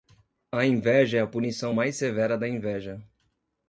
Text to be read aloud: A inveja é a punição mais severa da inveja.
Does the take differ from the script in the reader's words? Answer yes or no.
no